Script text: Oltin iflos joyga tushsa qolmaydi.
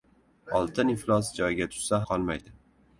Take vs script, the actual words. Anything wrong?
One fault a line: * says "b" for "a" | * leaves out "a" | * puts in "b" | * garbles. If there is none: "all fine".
all fine